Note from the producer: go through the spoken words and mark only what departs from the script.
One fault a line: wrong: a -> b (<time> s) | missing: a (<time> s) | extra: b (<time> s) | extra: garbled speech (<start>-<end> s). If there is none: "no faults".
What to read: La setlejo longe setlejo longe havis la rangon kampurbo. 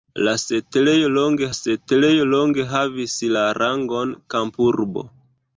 no faults